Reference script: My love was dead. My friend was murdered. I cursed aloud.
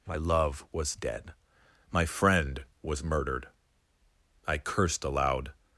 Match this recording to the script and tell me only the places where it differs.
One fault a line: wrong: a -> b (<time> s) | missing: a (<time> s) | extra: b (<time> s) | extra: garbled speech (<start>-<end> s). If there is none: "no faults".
no faults